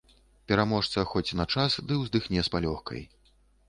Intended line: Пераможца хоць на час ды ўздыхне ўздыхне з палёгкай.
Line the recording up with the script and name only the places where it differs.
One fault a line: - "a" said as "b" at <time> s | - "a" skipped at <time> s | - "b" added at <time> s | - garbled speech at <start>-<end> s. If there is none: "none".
- "ўздыхне" skipped at 2.4 s